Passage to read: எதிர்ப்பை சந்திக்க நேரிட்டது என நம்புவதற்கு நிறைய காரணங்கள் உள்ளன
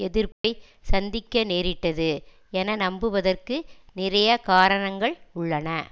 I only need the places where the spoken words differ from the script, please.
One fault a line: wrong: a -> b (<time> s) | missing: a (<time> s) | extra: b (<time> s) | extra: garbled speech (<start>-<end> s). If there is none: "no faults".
no faults